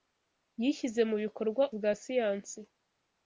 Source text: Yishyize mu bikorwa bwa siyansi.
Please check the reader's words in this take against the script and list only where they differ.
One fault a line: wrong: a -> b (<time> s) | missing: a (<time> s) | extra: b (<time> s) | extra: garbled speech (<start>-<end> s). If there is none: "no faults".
no faults